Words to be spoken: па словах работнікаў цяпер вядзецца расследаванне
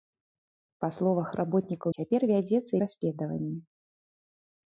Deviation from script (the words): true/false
false